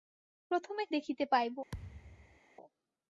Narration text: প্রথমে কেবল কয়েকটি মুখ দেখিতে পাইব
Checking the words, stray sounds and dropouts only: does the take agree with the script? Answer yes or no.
no